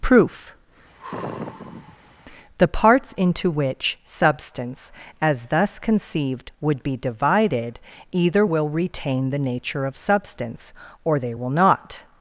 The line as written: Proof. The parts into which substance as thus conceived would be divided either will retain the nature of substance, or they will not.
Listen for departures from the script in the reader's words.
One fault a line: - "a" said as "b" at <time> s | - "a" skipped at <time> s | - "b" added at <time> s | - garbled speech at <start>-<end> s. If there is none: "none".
none